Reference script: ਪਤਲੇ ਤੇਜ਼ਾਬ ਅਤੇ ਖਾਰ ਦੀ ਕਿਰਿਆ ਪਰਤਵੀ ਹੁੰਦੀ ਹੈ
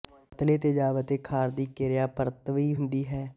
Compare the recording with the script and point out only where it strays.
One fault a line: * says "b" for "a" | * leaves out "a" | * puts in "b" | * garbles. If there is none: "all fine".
all fine